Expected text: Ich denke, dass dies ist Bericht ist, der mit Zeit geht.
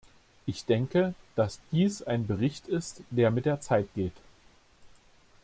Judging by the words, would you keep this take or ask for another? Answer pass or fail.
fail